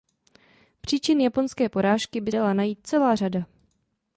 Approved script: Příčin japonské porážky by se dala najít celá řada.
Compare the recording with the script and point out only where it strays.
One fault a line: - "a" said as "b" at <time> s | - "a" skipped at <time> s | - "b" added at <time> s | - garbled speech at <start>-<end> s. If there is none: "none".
- "se" skipped at 2.3 s